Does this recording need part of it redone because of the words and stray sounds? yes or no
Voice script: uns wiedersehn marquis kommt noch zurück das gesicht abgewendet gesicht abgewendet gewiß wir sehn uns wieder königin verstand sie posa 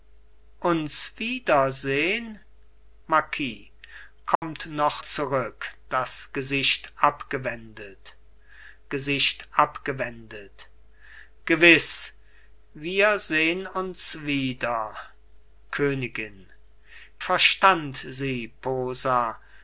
yes